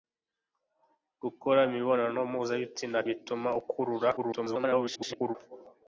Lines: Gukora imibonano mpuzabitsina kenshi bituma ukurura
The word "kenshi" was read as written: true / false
false